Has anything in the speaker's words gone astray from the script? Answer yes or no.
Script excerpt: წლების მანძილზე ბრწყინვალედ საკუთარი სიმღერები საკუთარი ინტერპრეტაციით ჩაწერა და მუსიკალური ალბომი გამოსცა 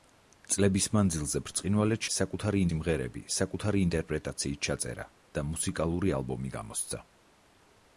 no